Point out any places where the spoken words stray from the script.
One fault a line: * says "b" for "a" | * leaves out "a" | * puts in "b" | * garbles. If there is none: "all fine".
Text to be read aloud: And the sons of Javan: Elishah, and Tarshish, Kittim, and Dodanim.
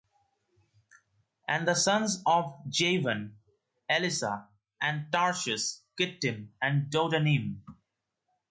all fine